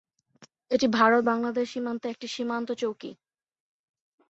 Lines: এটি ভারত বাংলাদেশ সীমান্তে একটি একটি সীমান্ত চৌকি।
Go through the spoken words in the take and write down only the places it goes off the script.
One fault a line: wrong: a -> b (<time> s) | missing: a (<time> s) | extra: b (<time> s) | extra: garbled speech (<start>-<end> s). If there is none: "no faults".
missing: একটি (2.3 s)